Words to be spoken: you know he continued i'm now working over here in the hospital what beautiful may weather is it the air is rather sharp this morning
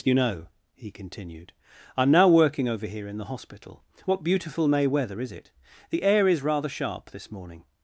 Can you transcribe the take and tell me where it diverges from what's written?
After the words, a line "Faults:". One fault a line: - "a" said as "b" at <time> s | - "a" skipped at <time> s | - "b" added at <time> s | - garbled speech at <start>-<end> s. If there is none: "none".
you know he continued i'm now working over here in the hospital what beautiful may weather is it the air is rather sharp this morning
Faults:
none